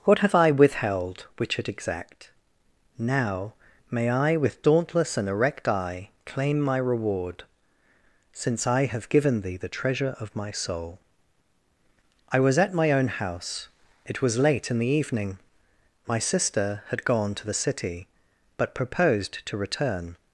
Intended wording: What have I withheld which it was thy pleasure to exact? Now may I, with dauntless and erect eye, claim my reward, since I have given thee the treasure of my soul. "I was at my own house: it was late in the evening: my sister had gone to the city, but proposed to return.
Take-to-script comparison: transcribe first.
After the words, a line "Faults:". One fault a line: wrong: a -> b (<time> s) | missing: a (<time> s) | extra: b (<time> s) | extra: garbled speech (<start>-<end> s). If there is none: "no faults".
What have I withheld which it exact? Now may I, with dauntless and erect eye, claim my reward, since I have given thee the treasure of my soul. "I was at my own house: it was late in the evening: my sister had gone to the city, but proposed to return.
Faults:
missing: was thy pleasure to (1.7 s)